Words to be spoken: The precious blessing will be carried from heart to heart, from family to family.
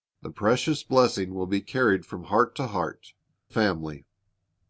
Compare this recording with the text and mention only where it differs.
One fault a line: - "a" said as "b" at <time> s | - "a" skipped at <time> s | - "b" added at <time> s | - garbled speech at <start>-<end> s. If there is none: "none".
- "from family to" skipped at 3.1 s